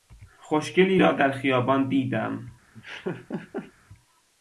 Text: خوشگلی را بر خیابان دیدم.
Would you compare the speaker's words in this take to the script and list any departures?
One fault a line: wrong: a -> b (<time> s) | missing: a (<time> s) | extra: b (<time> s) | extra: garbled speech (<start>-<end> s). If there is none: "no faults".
wrong: بر -> در (1.1 s)